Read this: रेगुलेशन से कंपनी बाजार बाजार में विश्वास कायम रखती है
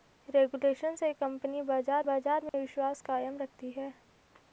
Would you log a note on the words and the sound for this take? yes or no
yes